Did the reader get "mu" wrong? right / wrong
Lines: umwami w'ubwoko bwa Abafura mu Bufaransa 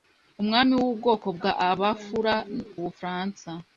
wrong